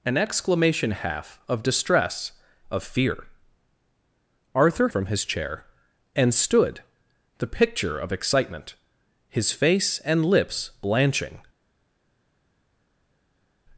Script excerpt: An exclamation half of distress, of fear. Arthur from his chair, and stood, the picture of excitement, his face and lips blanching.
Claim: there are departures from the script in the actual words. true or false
false